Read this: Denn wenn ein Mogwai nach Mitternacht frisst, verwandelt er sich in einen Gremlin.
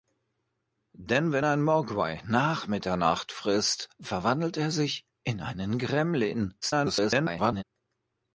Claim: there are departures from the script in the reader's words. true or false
true